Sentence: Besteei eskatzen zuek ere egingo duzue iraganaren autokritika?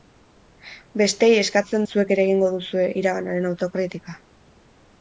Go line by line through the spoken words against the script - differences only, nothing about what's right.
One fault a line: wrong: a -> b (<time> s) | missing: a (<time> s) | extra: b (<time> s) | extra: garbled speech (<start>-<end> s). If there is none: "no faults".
no faults